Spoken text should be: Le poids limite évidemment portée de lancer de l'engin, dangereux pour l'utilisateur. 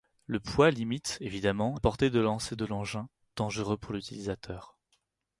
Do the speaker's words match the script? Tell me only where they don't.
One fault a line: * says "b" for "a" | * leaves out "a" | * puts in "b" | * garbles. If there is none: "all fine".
all fine